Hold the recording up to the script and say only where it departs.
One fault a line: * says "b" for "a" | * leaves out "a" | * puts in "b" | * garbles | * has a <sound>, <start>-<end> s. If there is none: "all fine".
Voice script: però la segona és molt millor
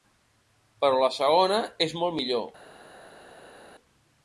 all fine